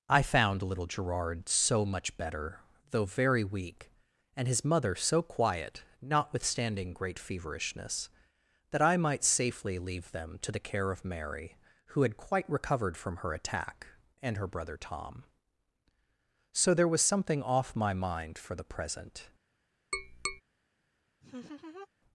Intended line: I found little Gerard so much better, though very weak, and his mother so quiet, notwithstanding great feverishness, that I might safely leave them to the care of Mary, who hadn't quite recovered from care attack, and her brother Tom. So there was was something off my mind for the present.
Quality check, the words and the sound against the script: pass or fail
fail